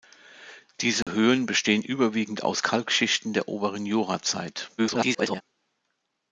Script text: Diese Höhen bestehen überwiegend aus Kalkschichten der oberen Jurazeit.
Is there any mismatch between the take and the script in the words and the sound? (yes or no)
yes